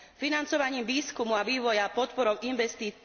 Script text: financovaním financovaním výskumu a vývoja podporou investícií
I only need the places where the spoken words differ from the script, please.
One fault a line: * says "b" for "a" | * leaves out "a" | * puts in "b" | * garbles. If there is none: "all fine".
* leaves out "financovaním"